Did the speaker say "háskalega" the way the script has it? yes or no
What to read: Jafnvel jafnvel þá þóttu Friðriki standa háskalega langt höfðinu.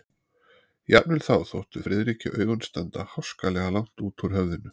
yes